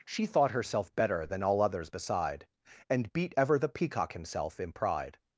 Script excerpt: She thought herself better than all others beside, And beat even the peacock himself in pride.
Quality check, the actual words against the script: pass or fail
fail